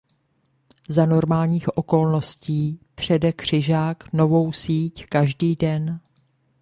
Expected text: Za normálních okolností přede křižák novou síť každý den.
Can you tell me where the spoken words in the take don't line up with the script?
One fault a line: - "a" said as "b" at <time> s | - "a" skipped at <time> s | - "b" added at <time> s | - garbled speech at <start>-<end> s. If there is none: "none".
none